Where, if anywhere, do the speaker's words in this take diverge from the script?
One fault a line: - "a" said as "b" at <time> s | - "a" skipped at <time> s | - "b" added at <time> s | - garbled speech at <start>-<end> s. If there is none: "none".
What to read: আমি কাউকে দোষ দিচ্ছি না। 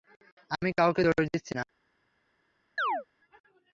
none